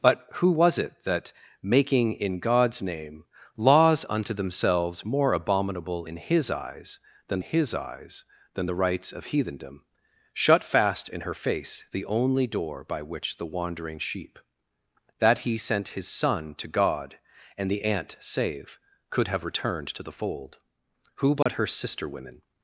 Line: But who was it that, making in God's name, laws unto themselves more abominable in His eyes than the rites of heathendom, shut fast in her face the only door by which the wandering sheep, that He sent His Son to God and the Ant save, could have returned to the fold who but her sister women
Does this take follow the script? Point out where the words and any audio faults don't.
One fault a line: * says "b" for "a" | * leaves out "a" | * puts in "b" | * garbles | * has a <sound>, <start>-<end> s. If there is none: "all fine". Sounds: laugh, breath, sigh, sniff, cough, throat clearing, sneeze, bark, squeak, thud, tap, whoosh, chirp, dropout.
* puts in "His eyes than"
* has a dropout, 21.4-21.5 s